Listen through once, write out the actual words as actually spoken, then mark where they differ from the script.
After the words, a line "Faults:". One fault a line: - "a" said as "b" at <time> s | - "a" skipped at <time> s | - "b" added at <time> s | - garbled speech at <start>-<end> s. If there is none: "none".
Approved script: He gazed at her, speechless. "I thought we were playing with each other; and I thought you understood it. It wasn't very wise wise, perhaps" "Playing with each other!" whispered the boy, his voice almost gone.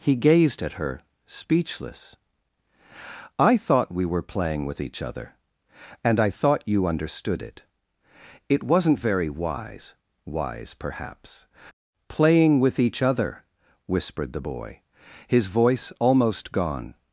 He gazed at her, speechless. "I thought we were playing with each other; and I thought you understood it. It wasn't very wise wise, perhaps" "Playing with each other!" whispered the boy, his voice almost gone.
Faults:
none